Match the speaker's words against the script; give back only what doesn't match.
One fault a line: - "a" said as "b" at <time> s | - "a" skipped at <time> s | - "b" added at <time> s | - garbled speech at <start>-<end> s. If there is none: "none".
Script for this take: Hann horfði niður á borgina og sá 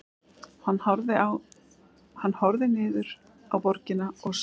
none